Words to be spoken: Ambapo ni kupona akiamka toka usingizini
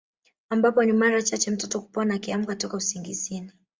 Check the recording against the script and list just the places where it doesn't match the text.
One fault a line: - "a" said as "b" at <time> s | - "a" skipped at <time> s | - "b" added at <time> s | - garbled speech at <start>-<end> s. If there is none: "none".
- "mara chache mtoto" added at 0.9 s